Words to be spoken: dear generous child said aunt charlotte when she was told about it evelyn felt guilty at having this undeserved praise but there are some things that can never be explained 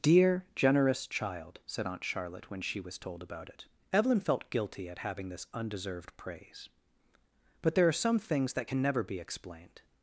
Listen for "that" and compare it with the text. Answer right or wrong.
right